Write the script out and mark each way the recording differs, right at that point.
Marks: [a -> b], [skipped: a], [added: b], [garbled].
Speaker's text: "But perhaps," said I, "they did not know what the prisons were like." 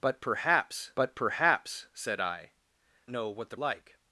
"But perhaps," [added: but perhaps] said I, [skipped: "they did not] know what the [skipped: prisons were] like."